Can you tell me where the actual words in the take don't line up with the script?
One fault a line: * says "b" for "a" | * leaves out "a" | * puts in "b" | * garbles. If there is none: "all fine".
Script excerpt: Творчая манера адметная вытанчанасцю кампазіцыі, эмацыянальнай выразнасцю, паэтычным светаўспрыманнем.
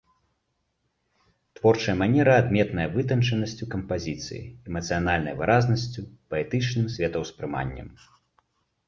all fine